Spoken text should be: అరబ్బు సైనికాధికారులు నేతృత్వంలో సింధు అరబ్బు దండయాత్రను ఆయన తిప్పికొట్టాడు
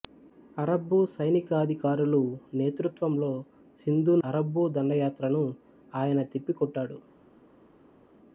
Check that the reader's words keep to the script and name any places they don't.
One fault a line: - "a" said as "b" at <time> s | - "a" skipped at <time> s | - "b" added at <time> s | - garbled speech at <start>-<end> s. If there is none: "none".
none